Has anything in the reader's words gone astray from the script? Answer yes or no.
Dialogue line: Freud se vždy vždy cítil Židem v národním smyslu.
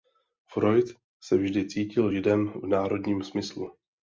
yes